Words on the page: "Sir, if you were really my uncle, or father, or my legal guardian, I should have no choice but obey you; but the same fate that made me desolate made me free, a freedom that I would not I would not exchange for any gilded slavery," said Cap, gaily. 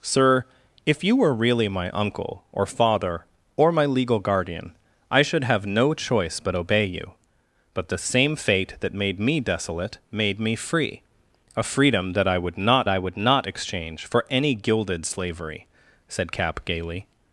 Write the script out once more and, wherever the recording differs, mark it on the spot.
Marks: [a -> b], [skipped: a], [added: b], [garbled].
"Sir, if you were really my uncle, or father, or my legal guardian, I should have no choice but obey you; but the same fate that made me desolate made me free, a freedom that I would not I would not exchange for any gilded slavery," said Cap, gaily.